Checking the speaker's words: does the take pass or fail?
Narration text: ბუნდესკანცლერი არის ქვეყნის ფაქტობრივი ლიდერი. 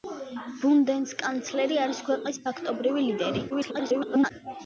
fail